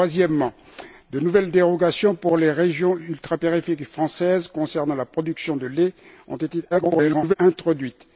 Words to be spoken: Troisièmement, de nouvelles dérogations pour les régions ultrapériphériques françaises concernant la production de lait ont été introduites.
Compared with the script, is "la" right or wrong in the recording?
right